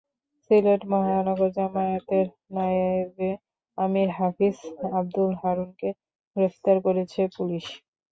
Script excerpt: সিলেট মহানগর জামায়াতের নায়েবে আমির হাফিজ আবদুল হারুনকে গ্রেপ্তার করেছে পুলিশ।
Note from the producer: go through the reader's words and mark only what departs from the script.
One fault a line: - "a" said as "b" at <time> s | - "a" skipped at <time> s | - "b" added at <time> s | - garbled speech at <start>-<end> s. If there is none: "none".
none